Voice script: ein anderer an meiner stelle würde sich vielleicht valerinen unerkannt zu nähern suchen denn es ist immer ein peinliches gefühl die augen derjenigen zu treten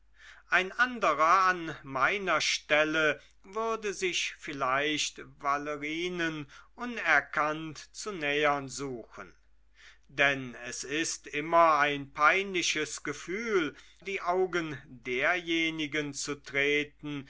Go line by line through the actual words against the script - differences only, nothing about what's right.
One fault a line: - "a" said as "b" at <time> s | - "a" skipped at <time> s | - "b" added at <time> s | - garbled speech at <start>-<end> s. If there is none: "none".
none